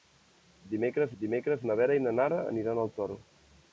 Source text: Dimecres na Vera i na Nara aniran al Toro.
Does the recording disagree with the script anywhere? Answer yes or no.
yes